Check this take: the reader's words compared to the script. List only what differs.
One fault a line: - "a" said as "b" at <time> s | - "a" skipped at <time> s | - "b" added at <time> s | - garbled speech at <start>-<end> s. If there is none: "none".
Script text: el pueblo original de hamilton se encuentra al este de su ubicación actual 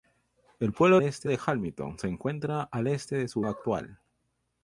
- "original" said as "este" at 1.0 s
- "ubicación" skipped at 3.4 s